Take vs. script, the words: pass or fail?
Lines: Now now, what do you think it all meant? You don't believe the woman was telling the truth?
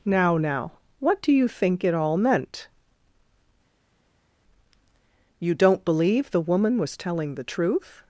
pass